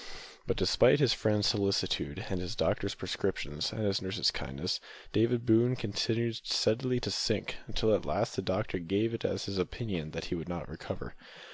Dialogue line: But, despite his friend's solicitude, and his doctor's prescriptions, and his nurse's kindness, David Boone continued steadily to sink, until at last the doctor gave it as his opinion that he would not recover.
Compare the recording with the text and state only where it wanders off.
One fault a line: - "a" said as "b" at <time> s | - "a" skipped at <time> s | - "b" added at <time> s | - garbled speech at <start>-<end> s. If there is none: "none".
none